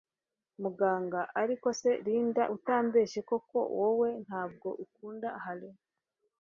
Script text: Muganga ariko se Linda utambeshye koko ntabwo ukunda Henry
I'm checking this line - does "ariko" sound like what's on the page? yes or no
yes